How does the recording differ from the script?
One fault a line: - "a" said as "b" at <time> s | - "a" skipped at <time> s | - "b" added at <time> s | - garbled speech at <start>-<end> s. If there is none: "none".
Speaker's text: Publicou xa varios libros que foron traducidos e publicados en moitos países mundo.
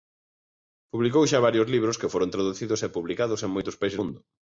none